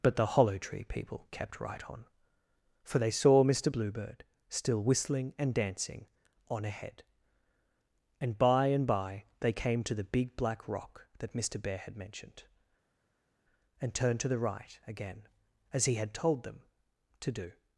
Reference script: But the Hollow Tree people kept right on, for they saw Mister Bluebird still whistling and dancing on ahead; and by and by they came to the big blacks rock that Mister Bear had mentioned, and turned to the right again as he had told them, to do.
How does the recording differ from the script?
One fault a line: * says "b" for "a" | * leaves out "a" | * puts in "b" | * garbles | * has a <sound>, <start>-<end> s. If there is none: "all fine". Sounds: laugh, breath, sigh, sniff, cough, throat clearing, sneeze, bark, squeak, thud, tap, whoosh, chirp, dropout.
* says "black" for "blacks"